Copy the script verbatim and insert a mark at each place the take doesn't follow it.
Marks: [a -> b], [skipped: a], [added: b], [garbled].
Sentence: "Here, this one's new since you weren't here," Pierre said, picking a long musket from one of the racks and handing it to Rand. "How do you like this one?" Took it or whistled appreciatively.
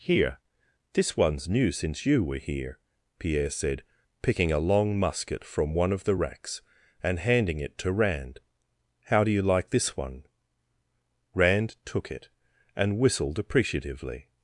"Here, this one's new since you [weren't -> were] here," Pierre said, picking a long musket from one of the racks and handing it to Rand. "How do you like this one?" [added: Rand] Took it [or -> and] whistled appreciatively.